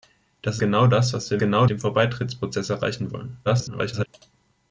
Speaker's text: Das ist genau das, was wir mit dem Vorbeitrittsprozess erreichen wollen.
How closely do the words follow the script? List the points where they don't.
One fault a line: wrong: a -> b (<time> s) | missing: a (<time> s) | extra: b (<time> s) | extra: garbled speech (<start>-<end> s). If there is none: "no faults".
missing: ist (0.6 s)
wrong: mit -> genau (1.4 s)
extra: garbled speech (3.5-4.1 s)